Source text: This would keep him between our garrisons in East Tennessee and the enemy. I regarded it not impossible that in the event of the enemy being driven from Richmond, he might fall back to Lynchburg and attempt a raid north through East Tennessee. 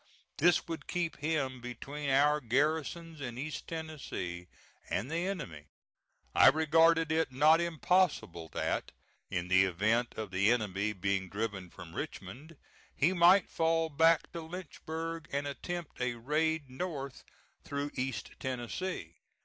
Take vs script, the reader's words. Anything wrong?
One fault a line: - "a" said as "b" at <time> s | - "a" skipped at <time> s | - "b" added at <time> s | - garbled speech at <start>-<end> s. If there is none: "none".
none